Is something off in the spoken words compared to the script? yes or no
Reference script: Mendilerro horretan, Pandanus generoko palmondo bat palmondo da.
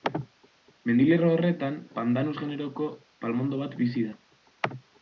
yes